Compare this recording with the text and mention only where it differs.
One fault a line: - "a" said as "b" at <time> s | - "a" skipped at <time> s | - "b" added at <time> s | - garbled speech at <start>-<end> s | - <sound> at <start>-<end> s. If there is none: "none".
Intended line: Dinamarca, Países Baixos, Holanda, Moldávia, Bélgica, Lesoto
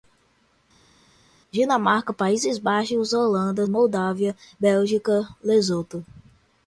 none